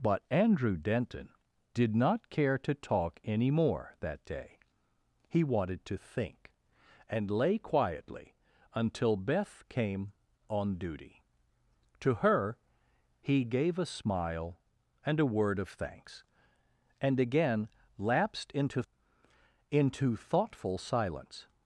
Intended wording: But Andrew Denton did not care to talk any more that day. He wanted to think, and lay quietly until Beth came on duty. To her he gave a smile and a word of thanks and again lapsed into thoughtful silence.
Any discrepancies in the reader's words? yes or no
yes